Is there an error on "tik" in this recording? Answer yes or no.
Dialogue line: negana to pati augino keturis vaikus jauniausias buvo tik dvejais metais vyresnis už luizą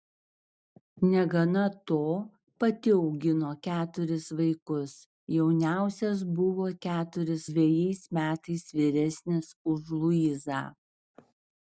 yes